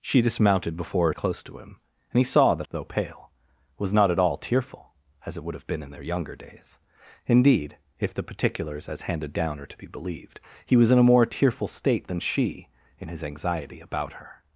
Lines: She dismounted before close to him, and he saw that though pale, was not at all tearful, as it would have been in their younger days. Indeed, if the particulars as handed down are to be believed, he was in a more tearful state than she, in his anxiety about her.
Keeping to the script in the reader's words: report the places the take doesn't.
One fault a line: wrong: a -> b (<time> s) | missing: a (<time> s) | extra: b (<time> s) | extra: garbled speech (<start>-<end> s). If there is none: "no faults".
no faults